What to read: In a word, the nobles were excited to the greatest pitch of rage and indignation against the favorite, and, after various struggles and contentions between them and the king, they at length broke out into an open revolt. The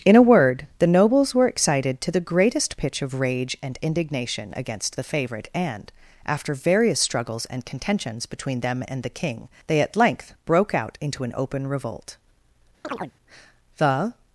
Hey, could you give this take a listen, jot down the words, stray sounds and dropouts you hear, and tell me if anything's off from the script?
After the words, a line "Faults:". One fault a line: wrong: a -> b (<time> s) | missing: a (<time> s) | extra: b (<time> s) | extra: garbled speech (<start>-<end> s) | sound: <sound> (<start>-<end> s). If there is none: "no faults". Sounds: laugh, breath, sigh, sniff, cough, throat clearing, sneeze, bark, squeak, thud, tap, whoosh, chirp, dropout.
In a word, the nobles were excited to the greatest pitch of rage and indignation against the favorite, and, after various struggles and contentions between them and the king, they at length broke out into an open revolt. The
Faults:
sound: chirp (12.8-13.1 s)